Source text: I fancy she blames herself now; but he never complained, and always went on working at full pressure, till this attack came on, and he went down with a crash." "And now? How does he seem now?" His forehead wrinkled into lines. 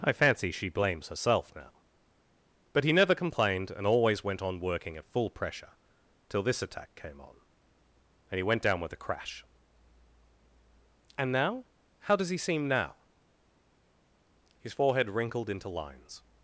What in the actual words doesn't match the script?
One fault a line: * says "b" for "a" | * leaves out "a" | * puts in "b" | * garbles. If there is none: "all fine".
all fine